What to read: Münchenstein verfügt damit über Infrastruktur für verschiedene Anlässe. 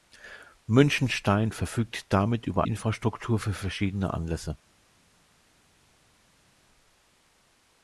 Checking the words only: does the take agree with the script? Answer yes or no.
yes